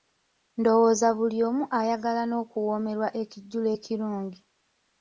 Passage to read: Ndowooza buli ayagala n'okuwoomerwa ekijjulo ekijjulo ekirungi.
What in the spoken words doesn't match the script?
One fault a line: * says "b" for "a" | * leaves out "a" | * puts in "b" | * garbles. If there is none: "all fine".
* puts in "omu"
* leaves out "ekijjulo"